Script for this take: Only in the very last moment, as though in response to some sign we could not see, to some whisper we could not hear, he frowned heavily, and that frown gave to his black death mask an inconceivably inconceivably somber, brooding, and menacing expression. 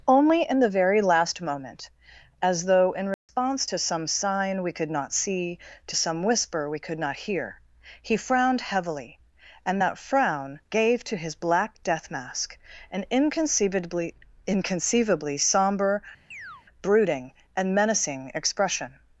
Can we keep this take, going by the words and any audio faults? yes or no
no